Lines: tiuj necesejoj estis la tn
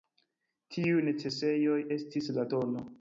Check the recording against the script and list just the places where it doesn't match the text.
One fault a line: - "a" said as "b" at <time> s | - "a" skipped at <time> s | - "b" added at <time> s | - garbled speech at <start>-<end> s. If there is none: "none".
none